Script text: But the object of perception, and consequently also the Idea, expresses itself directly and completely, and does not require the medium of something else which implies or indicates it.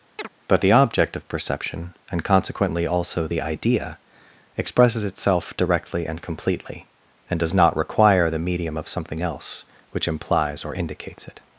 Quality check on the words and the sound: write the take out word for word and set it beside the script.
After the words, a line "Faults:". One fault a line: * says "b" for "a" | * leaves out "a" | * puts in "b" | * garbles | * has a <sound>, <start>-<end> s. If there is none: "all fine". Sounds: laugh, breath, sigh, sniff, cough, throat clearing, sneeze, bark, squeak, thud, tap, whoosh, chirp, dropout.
But the object of perception, and consequently also the Idea, expresses itself directly and completely, and does not require the medium of something else which implies or indicates it.
Faults:
* has a chirp, 0.2-0.3 s